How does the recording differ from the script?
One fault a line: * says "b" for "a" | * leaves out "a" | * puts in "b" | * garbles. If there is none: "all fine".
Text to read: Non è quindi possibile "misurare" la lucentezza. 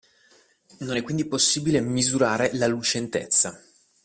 all fine